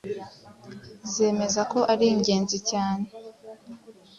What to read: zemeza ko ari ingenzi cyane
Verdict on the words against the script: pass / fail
pass